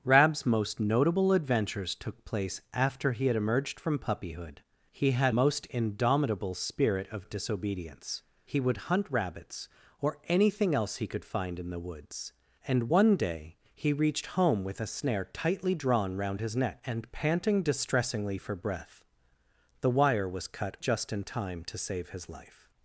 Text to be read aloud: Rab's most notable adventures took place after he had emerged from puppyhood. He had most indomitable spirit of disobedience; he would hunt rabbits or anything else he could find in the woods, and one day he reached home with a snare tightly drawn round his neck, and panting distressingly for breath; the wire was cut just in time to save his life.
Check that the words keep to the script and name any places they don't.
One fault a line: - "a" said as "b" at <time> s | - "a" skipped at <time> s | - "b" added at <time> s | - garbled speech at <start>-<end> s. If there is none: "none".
none